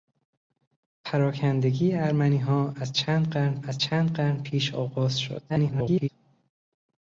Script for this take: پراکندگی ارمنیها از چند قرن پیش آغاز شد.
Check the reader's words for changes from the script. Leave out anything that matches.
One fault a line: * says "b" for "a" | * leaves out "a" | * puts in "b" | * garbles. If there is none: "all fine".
* puts in "از چند قرن"
* garbles